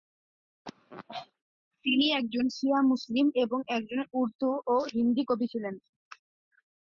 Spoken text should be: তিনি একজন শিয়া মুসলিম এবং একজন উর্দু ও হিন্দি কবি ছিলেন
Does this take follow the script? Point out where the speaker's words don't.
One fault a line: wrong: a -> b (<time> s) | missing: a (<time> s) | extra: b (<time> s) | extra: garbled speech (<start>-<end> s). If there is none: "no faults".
no faults